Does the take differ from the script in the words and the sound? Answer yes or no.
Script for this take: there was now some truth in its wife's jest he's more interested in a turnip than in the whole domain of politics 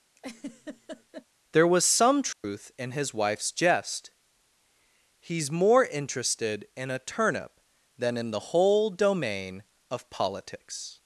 yes